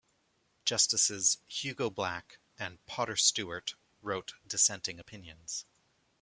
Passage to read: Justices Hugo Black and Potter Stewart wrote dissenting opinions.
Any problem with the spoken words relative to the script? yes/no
no